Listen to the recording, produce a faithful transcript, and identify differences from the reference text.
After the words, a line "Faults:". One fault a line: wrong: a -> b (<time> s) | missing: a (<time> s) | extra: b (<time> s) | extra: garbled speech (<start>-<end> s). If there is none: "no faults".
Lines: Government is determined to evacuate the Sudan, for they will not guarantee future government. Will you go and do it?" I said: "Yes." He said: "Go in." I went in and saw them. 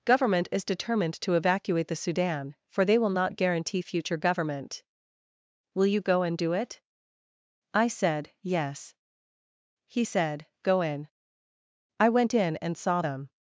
Government is determined to evacuate the Sudan, for they will not guarantee future government. Will you go and do it?" I said: "Yes." He said: "Go in." I went in and saw them.
Faults:
no faults